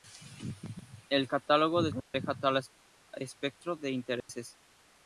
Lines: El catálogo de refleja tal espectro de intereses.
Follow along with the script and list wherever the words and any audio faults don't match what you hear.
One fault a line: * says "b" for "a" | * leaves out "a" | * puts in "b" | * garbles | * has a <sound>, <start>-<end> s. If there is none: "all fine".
* has a dropout, 2.0-2.1 s
* has a dropout, 4.2-4.3 s